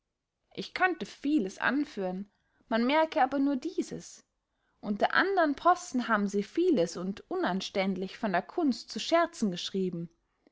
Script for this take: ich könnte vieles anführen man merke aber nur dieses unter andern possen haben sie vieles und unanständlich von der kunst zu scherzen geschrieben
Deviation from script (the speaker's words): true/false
false